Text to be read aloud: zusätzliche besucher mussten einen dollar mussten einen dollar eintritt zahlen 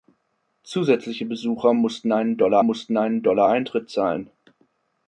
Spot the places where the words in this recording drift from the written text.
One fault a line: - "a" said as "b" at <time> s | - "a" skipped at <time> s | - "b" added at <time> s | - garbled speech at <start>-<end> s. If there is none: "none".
none